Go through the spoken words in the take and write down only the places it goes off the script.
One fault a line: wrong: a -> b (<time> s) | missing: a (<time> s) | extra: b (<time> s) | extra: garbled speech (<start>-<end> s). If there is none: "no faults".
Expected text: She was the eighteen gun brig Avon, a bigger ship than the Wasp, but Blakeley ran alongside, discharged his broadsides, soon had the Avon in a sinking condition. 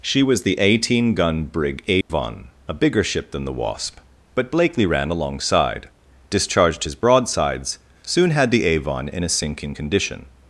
no faults